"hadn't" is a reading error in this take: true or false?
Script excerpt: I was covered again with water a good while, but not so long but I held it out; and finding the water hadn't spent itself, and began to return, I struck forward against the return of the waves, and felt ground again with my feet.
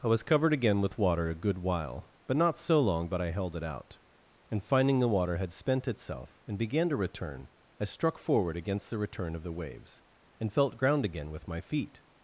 true